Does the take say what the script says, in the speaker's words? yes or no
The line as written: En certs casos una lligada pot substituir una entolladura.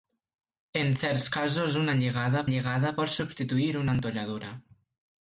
no